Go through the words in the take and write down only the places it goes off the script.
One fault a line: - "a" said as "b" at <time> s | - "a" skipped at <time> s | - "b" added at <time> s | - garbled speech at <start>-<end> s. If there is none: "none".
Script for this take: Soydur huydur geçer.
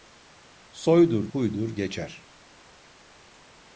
none